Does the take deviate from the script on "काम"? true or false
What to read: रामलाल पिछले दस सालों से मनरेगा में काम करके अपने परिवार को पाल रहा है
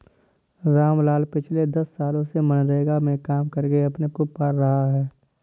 false